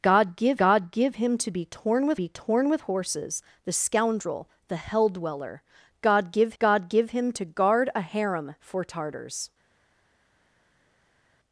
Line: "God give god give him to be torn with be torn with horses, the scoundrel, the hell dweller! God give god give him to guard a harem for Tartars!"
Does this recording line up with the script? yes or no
yes